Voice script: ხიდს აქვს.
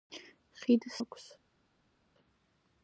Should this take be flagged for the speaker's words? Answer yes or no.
no